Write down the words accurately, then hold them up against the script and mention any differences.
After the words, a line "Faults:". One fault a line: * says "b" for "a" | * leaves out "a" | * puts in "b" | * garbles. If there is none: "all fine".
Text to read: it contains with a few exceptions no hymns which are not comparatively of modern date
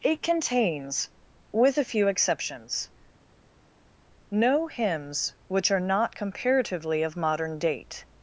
it contains with a few exceptions no hymns which are not comparatively of modern date
Faults:
all fine